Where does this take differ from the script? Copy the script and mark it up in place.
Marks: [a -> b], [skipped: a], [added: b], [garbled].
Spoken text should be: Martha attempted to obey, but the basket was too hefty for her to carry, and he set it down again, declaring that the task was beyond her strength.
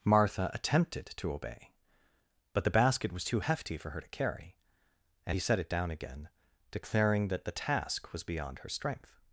Martha attempted to obey, but the basket was too hefty for her to carry, and he set it down again, declaring that the task was beyond her strength.